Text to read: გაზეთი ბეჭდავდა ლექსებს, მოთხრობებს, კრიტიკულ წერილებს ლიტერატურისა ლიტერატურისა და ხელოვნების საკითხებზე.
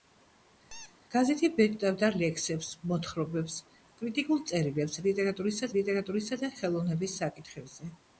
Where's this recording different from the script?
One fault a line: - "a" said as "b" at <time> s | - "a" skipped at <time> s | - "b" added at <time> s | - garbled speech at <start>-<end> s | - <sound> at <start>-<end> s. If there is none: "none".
- squeak at 0.7-1.0 s